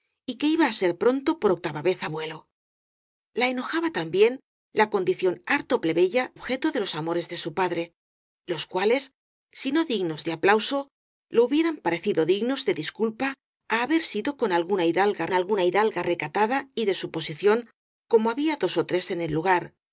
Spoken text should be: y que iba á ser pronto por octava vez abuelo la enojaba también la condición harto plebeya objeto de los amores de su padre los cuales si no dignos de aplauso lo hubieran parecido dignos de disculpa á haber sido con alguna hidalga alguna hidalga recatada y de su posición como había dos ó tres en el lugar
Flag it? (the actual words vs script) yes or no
no